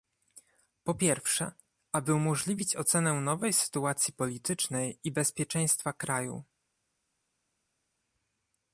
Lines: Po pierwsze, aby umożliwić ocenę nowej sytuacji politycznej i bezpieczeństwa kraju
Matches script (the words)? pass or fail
pass